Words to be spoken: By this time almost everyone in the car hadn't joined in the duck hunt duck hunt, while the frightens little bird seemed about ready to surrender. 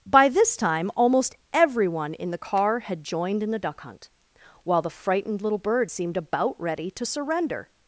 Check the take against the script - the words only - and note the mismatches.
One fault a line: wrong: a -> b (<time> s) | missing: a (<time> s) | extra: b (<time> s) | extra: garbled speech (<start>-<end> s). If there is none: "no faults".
wrong: hadn't -> had (2.8 s)
missing: duck hunt (4.1 s)
wrong: frightens -> frightened (4.9 s)